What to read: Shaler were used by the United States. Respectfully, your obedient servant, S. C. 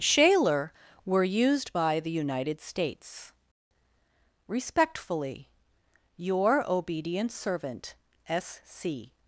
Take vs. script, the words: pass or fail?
pass